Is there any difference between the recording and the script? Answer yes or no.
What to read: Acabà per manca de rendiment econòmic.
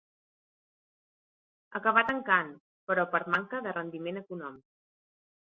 yes